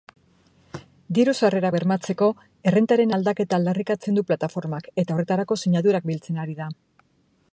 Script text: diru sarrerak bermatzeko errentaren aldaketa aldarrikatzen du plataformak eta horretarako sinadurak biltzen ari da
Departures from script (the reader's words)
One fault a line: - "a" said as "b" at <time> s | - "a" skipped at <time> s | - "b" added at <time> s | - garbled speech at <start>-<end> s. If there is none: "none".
none